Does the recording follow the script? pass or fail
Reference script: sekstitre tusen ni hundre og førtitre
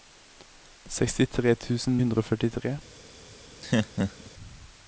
fail